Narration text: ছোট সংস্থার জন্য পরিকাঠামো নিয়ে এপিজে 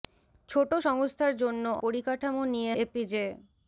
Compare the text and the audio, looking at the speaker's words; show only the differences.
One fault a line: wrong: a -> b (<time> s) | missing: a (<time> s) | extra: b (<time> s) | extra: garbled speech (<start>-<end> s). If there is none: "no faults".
no faults